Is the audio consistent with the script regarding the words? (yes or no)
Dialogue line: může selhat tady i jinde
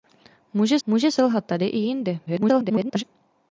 no